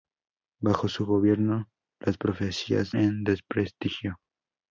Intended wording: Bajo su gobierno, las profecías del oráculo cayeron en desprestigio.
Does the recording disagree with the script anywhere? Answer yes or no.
yes